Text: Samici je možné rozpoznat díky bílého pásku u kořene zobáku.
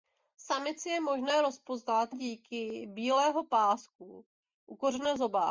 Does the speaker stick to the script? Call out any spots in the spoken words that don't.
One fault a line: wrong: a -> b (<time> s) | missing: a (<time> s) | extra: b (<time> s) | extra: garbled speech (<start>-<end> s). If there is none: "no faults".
no faults